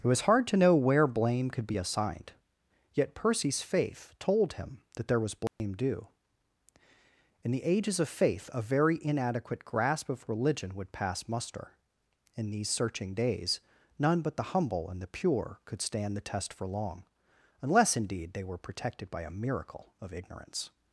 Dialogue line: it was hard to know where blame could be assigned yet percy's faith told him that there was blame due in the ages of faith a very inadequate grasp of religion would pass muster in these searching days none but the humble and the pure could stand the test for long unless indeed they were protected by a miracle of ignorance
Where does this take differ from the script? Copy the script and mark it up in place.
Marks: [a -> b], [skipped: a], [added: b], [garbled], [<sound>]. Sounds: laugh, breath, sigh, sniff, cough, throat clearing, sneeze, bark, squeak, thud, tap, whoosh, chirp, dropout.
it was hard to know where blame could be assigned yet percy's faith told him that there was blame [dropout] due in the ages of faith a very inadequate grasp of religion would pass muster in these searching days none but the humble and the pure could stand the test for long unless indeed they were protected by a miracle of ignorance